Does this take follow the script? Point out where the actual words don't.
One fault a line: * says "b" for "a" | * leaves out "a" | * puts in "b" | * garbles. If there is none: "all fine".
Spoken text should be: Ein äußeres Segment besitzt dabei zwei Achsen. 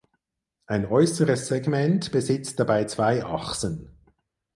all fine